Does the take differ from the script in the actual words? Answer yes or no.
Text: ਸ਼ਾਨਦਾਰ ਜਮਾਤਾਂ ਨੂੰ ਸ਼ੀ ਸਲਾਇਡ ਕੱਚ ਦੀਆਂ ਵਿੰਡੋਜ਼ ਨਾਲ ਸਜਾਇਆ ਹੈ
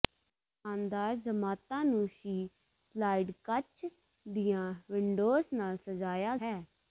no